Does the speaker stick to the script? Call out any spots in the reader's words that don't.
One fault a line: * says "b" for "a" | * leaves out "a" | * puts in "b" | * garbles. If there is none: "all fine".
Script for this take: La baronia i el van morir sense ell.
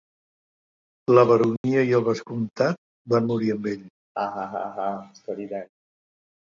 * puts in "vescomtat"
* says "amb" for "sense"